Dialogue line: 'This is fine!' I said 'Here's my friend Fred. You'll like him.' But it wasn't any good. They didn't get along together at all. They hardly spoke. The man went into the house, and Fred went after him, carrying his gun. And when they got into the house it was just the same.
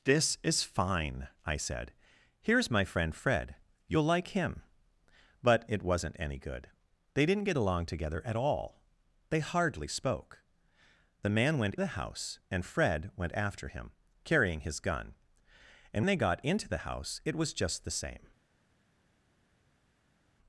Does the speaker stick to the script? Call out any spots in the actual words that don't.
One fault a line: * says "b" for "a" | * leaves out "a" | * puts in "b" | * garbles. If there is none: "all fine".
* leaves out "into"
* leaves out "when"